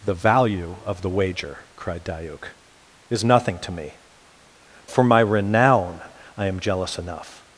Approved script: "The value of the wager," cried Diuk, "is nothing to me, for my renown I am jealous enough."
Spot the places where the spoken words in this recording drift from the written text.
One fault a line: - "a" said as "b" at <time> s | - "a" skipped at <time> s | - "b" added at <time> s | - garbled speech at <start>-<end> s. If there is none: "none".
none